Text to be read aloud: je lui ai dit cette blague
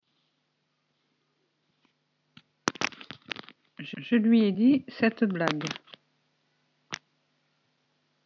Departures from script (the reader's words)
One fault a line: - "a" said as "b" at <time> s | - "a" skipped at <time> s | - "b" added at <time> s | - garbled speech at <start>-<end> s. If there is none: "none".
- "je" added at 4.0 s